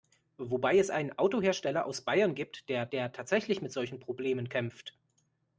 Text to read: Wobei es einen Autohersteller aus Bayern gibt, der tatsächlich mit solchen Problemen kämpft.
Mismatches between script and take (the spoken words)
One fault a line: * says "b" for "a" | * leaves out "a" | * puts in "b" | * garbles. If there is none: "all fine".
* puts in "der"